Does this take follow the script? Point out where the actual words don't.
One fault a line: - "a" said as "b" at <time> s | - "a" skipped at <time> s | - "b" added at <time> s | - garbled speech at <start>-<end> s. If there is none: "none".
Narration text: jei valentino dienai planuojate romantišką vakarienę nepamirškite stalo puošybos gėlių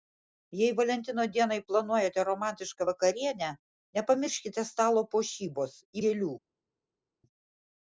none